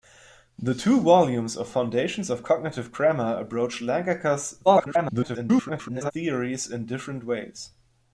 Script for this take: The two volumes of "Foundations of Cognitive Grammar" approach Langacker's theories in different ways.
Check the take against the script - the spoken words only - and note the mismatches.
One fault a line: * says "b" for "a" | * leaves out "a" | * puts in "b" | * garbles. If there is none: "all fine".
* garbles